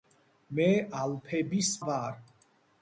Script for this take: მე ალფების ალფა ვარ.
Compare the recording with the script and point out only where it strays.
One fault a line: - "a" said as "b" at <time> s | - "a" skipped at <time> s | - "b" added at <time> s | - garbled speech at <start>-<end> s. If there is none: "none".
- "ალფა" skipped at 1.7 s